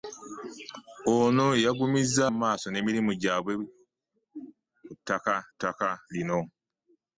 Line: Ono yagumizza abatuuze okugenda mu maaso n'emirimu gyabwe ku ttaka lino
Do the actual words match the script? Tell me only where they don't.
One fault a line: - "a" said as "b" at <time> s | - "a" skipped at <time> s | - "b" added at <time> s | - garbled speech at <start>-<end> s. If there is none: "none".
- "abatuuze okugenda" skipped at 2.2 s
- "ttaka" added at 5.5 s